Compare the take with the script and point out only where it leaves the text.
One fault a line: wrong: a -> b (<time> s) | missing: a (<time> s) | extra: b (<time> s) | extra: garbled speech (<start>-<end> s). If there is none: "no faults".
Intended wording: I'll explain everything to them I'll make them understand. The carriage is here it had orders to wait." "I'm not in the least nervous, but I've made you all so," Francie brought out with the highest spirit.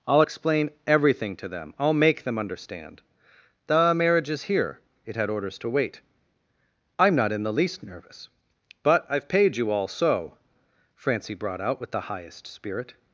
wrong: carriage -> marriage (3.9 s)
wrong: made -> paid (9.3 s)